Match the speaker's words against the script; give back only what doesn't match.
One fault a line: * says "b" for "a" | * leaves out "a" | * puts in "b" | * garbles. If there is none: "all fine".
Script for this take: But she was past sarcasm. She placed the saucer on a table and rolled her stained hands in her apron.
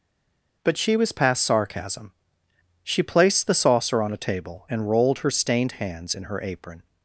all fine